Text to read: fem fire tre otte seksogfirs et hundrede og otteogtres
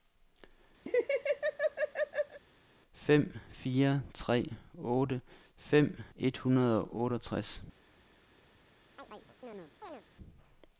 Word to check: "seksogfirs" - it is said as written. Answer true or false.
false